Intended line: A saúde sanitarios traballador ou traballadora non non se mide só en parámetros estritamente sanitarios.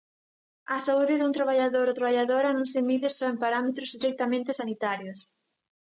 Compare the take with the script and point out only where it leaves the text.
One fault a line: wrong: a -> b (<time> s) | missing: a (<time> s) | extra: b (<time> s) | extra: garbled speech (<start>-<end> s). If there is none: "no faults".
wrong: sanitarios -> dun (1.2 s)
missing: non (2.7 s)